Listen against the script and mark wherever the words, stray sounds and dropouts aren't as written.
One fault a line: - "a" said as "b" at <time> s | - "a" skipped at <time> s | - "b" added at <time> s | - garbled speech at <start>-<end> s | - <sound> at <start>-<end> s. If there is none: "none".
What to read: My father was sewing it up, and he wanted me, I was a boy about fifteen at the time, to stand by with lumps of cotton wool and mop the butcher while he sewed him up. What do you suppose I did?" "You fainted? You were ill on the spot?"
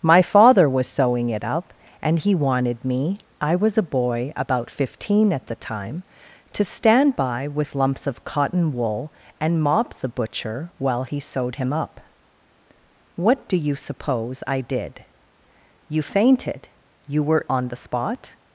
- "ill" skipped at 17.4 s